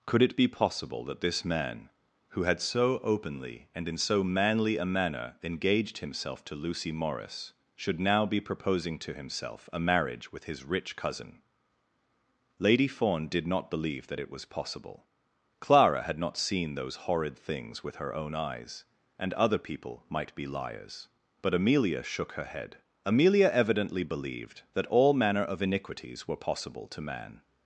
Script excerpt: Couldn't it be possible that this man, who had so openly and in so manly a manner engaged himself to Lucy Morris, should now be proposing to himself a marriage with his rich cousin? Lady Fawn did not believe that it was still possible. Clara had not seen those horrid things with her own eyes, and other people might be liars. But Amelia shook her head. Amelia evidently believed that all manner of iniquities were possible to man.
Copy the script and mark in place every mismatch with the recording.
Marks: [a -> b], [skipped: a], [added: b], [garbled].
[Couldn't -> Could] it be possible that this man, who had so openly and in so manly a manner engaged himself to Lucy Morris, should now be proposing to himself a marriage with his rich cousin? Lady Fawn did not believe that it was [skipped: still] possible. Clara had not seen those horrid things with her own eyes, and other people might be liars. But Amelia shook her head. Amelia evidently believed that all manner of iniquities were possible to man.